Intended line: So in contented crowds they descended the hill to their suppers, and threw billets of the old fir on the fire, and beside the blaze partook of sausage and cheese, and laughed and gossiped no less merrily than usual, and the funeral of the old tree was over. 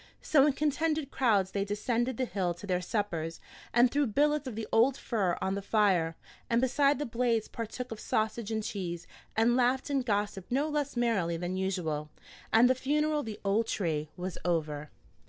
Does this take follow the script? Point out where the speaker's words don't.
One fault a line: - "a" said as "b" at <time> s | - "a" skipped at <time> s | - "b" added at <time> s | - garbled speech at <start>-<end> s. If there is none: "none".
none